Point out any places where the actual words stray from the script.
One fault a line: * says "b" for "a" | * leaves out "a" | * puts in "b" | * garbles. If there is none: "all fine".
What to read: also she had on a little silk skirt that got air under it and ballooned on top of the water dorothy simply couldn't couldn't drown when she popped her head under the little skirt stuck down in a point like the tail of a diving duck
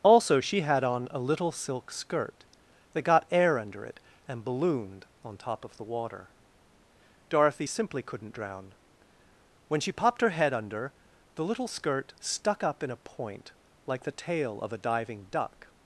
* leaves out "couldn't"
* says "up" for "down"